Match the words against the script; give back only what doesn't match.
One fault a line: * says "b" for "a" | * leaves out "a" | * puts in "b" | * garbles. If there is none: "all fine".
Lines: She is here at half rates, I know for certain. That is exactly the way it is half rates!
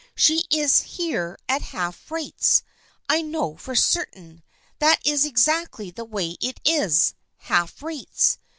all fine